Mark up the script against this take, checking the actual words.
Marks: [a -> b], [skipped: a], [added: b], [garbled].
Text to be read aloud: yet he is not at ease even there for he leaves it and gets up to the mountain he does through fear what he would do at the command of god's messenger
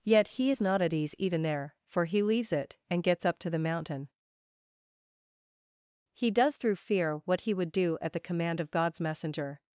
yet he is not at ease even there for he leaves it and gets up to the mountain he does through fear what he would do at the command of god's messenger